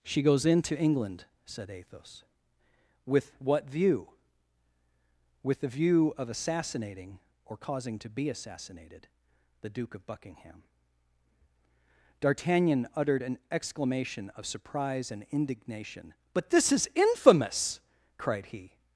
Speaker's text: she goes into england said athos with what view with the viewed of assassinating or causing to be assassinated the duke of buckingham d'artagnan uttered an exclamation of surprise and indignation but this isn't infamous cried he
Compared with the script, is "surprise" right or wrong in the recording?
right